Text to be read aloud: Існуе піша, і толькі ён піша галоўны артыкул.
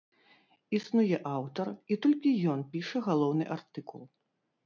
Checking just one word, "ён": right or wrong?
right